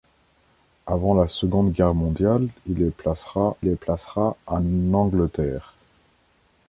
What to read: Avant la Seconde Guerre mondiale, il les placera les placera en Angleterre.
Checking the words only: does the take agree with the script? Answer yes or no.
yes